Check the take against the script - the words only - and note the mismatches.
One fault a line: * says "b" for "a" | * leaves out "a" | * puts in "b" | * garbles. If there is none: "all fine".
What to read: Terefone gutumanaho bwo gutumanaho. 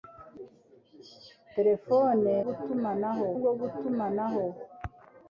all fine